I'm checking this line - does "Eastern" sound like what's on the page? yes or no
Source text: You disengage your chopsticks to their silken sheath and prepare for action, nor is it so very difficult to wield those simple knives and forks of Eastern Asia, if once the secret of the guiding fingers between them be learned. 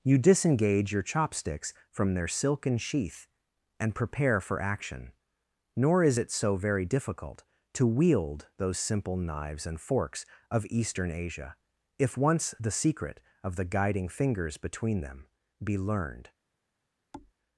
yes